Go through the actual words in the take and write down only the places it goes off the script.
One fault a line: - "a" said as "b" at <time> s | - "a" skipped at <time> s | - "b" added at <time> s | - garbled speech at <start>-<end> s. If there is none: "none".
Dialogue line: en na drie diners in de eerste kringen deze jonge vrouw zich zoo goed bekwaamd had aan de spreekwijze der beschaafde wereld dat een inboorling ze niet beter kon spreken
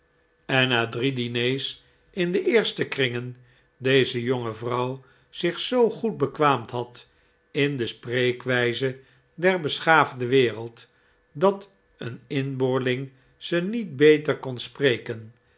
- "aan" said as "in" at 7.5 s